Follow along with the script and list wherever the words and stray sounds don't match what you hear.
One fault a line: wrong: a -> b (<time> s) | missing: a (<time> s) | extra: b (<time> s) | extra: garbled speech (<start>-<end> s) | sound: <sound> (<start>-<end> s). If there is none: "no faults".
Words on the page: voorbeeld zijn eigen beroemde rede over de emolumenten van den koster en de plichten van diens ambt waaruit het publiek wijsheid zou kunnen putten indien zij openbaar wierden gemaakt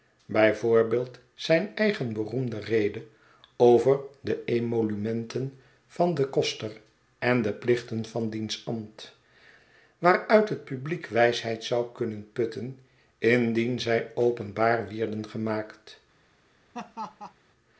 sound: laugh (16.7-17.3 s)